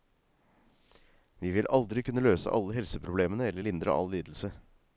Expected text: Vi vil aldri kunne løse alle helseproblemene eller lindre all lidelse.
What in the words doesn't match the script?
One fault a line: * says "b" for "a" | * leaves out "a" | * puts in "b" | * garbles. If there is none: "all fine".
all fine